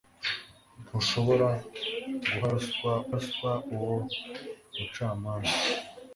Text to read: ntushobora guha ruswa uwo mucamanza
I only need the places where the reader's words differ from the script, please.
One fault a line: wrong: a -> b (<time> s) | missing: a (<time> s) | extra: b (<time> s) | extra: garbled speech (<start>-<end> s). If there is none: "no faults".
extra: ruswa (3.2 s)